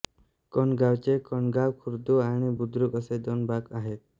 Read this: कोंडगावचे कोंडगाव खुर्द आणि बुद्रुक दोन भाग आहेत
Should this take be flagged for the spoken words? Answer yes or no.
yes